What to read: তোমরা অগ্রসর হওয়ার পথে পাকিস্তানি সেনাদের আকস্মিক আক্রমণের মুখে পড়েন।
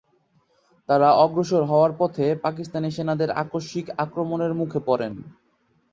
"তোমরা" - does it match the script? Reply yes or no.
no